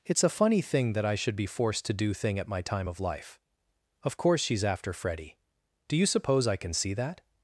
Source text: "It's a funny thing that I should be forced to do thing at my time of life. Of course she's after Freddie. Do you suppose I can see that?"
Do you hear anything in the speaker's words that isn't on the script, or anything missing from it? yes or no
no